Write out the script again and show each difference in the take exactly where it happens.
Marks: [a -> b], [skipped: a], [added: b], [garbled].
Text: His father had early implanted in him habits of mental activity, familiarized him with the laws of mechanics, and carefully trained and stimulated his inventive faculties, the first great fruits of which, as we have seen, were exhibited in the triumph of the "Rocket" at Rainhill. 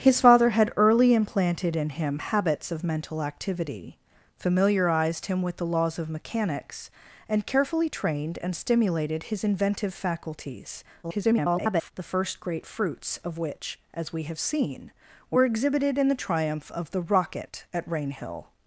His father had early implanted in him habits of mental activity, familiarized him with the laws of mechanics, and carefully trained and stimulated his inventive faculties, [garbled] the first great fruits of which, as we have seen, were exhibited in the triumph of the "Rocket" at Rainhill.